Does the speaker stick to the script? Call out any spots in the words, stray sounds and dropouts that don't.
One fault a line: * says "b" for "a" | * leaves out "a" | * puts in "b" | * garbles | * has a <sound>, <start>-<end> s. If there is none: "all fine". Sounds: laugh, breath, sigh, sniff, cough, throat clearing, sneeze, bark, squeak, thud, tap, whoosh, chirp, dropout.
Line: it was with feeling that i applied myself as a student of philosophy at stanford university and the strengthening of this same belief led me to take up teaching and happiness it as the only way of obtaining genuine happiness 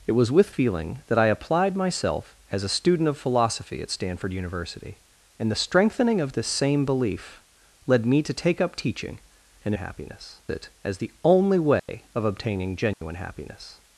* has a dropout, 11.8-11.9 s
* has a dropout, 12.9-13.0 s